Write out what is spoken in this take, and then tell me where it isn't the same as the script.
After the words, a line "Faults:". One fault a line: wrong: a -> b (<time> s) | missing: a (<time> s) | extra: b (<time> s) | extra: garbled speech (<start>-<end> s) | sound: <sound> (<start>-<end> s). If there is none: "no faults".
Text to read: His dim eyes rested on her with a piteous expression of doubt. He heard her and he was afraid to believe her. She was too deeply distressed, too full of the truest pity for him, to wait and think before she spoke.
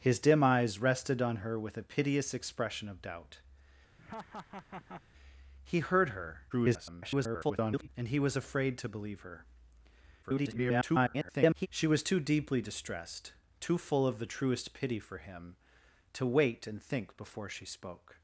His dim eyes rested on her with a piteous expression of doubt. He heard her [garbled] and he was afraid to believe her. [garbled] She was too deeply distressed, too full of the truest pity for him, to wait and think before she spoke.
Faults:
sound: laugh (4.0-5.0 s)
extra: garbled speech (6.5-7.9 s)
extra: garbled speech (10.2-11.7 s)